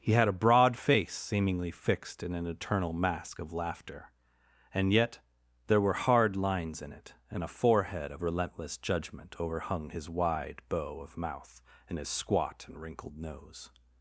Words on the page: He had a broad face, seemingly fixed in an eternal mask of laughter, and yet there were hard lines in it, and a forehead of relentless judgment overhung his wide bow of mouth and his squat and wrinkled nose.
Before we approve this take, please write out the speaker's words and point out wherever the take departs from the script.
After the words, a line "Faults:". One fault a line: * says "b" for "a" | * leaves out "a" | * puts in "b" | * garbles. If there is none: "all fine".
He had a broad face, seemingly fixed in an eternal mask of laughter, and yet there were hard lines in it, and a forehead of relentless judgment overhung his wide bow of mouth and his squat and wrinkled nose.
Faults:
all fine